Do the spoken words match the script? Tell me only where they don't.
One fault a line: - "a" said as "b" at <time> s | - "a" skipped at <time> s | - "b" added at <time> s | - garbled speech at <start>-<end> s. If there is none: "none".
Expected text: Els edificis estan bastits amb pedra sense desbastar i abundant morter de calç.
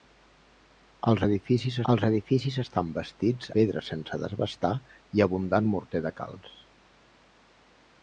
- "els edificis" added at 1.9 s
- "amb" skipped at 3.5 s